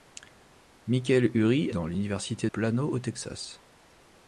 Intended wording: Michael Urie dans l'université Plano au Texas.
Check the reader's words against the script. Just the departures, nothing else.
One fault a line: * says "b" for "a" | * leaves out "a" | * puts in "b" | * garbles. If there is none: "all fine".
all fine